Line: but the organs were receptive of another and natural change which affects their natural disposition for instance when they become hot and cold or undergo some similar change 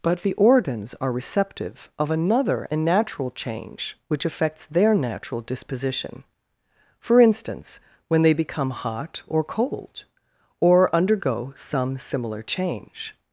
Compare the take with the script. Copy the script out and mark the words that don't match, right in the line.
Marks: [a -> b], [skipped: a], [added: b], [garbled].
but the organs [were -> are] receptive of another and natural change which affects their natural disposition for instance when they become hot [and -> or] cold or undergo some similar change